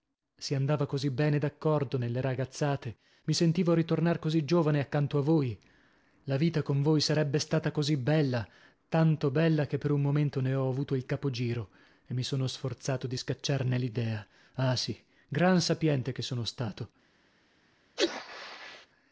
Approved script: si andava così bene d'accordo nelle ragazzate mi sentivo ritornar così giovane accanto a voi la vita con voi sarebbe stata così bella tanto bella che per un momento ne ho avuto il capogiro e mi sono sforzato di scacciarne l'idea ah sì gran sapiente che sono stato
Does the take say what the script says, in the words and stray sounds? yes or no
no